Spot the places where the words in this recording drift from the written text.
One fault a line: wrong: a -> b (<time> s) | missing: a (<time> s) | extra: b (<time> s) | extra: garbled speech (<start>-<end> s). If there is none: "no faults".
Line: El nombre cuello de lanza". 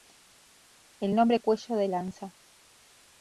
no faults